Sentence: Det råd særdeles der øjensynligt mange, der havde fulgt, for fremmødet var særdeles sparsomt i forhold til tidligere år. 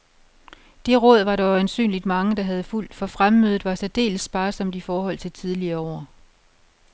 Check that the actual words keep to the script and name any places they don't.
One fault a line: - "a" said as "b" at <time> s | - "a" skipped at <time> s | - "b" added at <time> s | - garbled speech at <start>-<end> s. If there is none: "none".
- "særdeles" said as "var" at 1.2 s